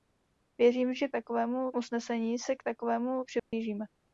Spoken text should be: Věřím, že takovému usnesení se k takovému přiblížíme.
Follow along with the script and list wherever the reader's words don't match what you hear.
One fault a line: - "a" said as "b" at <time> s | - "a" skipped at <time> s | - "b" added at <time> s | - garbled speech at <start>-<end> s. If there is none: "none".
none